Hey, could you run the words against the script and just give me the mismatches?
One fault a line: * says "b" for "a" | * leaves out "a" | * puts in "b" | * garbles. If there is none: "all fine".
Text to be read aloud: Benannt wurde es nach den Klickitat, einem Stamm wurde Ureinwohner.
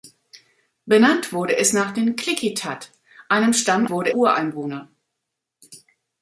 all fine